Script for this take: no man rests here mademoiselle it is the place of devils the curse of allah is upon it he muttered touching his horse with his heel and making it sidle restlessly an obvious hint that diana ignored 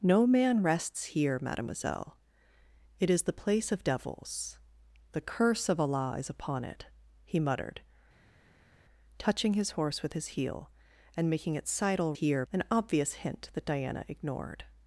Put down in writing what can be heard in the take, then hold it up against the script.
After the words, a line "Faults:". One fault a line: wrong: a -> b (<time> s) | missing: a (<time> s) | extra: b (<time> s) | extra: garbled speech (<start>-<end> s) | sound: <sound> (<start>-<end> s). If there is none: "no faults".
no man rests here mademoiselle it is the place of devils the curse of allah is upon it he muttered touching his horse with his heel and making it sidle here an obvious hint that diana ignored
Faults:
wrong: restlessly -> here (12.1 s)